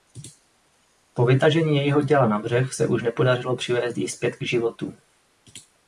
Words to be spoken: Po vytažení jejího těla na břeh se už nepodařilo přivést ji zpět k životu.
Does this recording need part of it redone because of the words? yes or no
no